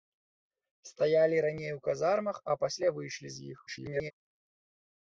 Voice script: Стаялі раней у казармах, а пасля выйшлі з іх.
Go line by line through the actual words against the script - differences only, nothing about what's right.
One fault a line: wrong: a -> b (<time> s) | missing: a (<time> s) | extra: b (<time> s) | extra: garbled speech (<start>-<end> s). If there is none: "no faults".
extra: garbled speech (3.7-4.1 s)